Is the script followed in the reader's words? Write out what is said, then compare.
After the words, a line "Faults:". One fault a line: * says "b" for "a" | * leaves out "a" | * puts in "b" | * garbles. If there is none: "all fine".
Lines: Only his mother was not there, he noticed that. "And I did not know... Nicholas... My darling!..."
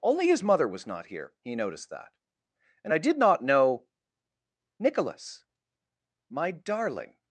Only his mother was not here, he noticed that. "And I did not know... Nicholas... My darling!..."
Faults:
* says "here" for "there"